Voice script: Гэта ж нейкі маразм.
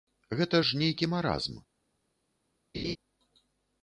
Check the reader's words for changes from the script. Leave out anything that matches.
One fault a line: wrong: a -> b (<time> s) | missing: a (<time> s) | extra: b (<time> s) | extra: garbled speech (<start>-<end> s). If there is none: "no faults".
no faults